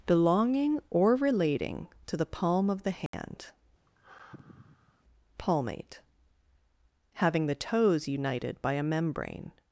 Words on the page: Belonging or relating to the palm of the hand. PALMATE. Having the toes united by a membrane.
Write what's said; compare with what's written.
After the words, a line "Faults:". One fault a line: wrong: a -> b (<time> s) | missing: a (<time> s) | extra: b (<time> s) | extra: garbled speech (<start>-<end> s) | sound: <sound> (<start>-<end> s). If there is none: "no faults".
Belonging or relating to the palm of the hand. PALMATE. Having the toes united by a membrane.
Faults:
sound: dropout (3.1-3.1 s)
sound: sigh (3.9-5.0 s)